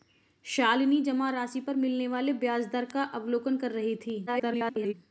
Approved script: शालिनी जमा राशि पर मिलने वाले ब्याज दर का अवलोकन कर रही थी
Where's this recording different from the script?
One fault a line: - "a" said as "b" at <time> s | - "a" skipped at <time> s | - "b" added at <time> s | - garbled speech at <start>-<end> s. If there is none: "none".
- garbled speech at 4.3-4.9 s